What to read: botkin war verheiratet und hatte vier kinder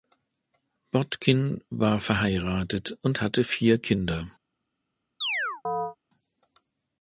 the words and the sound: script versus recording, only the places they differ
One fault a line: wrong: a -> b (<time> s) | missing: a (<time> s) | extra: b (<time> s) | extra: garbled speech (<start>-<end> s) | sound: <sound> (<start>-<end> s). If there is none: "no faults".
sound: chirp (5.2-6.0 s)